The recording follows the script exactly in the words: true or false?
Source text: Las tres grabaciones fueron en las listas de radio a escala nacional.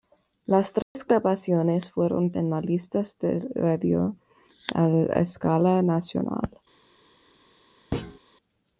true